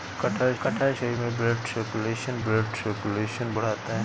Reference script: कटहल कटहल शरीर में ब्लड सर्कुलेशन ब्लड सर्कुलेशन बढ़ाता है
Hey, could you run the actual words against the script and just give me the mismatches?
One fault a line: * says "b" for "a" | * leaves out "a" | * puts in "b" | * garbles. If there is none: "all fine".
all fine